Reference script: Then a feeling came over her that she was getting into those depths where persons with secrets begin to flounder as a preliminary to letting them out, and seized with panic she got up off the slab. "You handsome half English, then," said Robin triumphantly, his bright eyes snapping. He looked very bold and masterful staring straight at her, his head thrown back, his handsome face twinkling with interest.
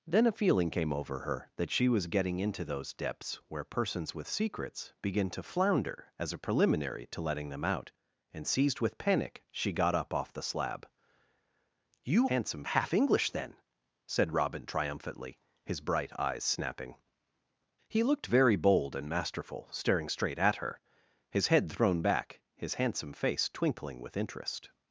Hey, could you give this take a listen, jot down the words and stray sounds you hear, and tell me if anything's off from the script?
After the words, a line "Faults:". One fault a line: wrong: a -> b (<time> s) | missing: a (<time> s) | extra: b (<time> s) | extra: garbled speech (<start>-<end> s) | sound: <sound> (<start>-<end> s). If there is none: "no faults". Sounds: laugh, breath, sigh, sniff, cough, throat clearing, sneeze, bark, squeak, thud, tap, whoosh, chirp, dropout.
Then a feeling came over her that she was getting into those depths where persons with secrets begin to flounder as a preliminary to letting them out, and seized with panic she got up off the slab. "You handsome half English, then," said Robin triumphantly, his bright eyes snapping. He looked very bold and masterful staring straight at her, his head thrown back, his handsome face twinkling with interest.
Faults:
no faults